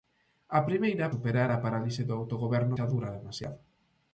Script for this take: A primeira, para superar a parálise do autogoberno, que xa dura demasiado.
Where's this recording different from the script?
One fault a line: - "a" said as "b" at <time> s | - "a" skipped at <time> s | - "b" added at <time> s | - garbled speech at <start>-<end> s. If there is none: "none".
- "para" skipped at 1.1 s
- "que" skipped at 2.8 s